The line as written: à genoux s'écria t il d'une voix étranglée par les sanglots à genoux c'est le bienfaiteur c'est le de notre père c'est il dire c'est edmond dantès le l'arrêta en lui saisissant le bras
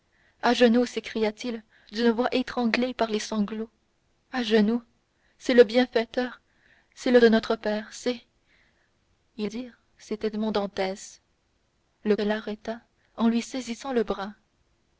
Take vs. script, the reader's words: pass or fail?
pass